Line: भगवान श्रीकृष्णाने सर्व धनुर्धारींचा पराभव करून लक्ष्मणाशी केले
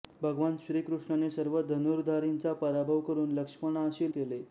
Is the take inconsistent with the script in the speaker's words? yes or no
no